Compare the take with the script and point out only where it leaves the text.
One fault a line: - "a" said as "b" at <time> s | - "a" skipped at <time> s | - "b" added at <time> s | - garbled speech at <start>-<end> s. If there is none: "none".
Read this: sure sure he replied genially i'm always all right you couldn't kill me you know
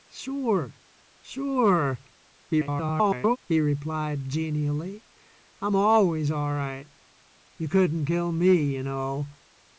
- garbled speech at 2.5-3.4 s